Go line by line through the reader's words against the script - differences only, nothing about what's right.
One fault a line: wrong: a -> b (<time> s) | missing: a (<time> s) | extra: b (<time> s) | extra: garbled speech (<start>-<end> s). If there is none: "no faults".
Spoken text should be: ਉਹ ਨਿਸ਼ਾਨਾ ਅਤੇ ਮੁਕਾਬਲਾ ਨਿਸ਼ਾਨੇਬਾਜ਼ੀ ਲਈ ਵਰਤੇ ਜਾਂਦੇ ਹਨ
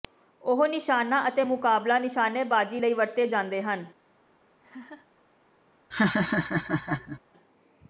no faults